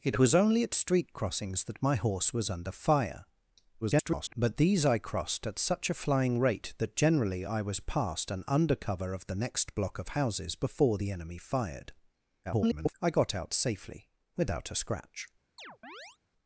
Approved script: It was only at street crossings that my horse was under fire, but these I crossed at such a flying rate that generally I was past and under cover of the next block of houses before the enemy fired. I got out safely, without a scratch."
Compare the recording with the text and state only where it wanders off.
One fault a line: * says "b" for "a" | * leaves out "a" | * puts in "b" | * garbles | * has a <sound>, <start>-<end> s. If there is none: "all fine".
* garbles
* garbles
* has a chirp, 15.6-16.2 s